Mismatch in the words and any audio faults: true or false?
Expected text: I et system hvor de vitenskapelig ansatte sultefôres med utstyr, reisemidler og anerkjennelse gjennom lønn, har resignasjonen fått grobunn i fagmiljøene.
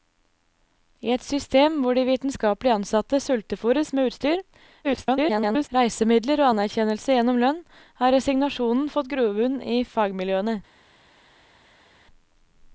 true